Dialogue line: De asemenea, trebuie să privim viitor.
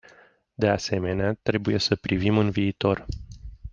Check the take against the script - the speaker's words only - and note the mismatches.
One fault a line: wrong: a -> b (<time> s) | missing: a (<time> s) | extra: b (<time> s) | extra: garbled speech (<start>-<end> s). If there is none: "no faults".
extra: în (2.4 s)